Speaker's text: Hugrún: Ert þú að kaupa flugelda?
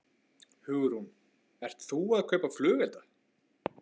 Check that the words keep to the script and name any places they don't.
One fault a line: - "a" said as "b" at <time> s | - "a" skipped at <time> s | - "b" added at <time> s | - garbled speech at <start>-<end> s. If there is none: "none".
none